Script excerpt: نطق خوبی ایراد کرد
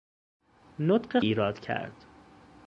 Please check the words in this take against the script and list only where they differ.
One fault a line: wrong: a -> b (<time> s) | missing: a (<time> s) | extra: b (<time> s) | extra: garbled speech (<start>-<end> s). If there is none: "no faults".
missing: خوبی (1.2 s)